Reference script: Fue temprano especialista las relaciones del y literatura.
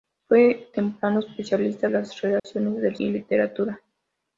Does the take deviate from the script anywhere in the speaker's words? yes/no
no